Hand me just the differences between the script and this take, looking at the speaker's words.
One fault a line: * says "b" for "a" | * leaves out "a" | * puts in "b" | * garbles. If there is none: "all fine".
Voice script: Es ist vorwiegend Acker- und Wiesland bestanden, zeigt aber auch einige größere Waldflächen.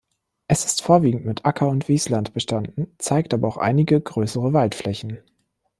* puts in "mit"